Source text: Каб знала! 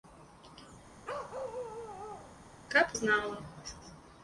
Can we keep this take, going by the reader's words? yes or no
yes